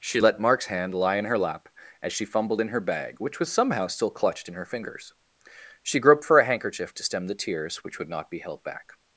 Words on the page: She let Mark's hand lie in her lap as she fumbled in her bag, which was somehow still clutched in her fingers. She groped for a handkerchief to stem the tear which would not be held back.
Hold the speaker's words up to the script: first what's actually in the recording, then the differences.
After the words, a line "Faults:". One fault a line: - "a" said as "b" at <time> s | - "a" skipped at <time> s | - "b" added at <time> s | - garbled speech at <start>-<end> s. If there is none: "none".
She let Mark's hand lie in her lap as she fumbled in her bag, which was somehow still clutched in her fingers. She groped for a handkerchief to stem the tears which would not be held back.
Faults:
- "tear" said as "tears" at 7.3 s